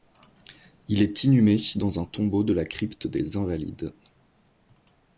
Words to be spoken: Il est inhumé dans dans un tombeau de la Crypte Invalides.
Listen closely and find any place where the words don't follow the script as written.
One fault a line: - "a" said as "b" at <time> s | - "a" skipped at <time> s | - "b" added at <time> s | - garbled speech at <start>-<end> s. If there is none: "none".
- "dans" skipped at 2.0 s
- "des" added at 3.1 s